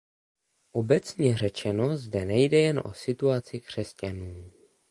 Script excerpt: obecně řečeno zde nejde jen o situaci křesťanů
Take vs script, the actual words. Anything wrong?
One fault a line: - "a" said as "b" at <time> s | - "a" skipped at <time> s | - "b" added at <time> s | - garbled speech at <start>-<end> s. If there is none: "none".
none